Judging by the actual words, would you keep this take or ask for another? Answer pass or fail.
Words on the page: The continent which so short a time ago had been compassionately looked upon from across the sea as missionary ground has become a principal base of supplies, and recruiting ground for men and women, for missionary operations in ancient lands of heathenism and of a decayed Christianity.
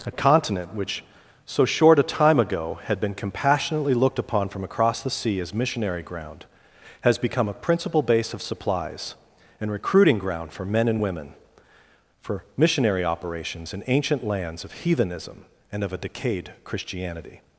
fail